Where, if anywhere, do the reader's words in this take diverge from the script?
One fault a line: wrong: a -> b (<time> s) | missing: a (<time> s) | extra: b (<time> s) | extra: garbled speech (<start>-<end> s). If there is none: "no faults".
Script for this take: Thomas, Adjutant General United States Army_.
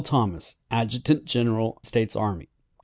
missing: United (1.8 s)